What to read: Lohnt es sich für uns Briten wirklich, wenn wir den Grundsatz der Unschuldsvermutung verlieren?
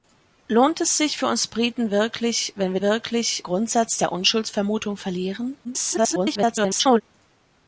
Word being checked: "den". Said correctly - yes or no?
no